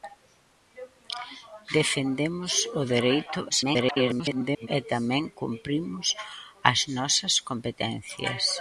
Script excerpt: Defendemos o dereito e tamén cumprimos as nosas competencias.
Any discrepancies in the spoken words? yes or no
yes